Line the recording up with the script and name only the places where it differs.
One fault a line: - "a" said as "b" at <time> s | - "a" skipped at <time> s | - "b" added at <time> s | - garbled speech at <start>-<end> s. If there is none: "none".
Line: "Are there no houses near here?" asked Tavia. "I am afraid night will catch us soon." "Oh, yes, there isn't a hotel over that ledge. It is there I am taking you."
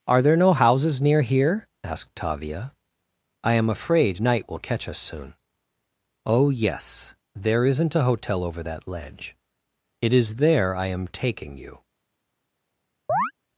none